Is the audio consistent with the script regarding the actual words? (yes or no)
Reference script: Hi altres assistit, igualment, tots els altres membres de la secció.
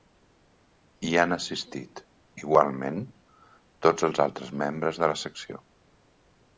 no